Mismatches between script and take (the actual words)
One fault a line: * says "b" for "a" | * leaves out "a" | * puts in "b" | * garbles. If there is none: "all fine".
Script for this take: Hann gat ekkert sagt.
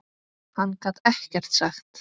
all fine